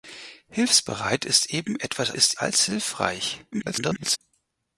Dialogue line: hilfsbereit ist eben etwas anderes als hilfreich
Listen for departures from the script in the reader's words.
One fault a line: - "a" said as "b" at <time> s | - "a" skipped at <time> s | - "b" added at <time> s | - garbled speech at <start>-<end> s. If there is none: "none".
- "anderes" said as "ist" at 2.1 s
- garbled speech at 3.5-4.2 s